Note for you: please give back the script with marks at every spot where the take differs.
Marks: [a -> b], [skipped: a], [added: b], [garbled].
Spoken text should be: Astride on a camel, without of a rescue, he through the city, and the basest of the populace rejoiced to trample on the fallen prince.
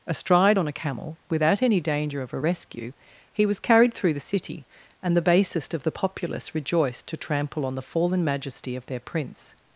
Astride on a camel, without [added: any danger] of a rescue, he [added: was carried] through the city, and the basest of the populace rejoiced to trample on the fallen [added: majesty of their] prince.